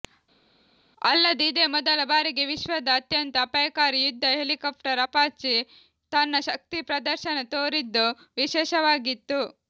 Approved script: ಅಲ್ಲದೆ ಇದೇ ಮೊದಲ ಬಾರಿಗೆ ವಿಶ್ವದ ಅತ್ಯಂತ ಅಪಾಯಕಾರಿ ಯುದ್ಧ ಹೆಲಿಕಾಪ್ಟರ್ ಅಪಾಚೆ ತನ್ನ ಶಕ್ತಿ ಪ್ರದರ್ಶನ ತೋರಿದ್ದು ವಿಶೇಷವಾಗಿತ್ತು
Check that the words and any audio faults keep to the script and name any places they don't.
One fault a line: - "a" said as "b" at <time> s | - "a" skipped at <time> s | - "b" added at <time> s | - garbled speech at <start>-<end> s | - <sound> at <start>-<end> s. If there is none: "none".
none